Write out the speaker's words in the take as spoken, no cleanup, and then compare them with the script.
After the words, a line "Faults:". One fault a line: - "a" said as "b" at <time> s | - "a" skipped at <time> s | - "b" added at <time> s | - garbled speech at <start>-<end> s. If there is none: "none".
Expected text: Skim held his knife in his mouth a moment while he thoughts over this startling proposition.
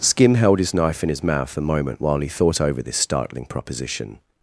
Skim held his knife in his mouth a moment while he thought over this startling proposition.
Faults:
- "thoughts" said as "thought" at 2.3 s